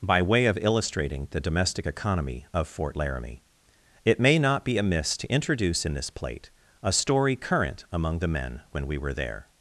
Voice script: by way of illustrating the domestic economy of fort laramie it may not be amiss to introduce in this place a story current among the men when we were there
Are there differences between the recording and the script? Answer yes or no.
yes